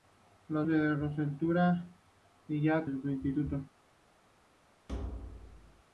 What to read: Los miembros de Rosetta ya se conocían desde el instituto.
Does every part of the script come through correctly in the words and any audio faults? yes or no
no